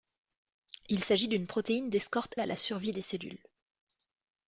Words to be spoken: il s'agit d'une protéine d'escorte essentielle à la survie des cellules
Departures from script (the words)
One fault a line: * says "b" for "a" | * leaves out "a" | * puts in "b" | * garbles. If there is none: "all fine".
* leaves out "essentielle"